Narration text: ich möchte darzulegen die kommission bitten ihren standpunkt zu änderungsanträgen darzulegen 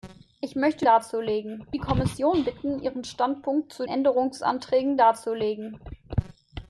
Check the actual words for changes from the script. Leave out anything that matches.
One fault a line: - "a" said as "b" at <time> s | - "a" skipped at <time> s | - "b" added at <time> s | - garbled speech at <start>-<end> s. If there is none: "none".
none